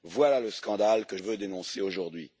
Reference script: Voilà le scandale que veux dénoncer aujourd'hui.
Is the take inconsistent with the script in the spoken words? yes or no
no